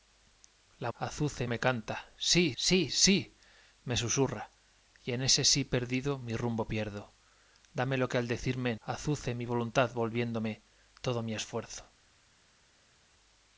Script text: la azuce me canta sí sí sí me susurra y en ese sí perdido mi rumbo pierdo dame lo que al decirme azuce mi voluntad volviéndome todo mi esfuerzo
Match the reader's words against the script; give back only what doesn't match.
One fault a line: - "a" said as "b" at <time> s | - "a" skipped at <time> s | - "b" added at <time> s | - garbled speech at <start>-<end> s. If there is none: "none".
none